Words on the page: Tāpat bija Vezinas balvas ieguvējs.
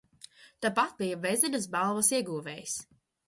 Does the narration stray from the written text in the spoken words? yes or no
no